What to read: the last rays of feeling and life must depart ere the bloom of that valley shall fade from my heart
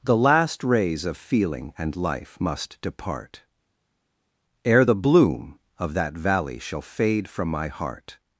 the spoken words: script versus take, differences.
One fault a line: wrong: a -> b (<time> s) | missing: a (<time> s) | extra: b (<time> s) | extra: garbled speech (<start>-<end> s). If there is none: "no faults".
no faults